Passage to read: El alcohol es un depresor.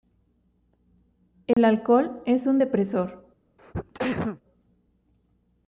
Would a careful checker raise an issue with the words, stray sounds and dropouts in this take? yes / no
yes